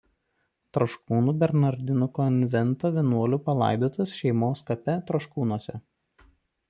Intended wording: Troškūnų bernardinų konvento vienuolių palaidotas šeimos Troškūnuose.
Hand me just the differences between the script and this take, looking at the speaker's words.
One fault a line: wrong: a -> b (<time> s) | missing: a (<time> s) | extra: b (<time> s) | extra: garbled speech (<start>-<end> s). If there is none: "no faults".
extra: kape (4.7 s)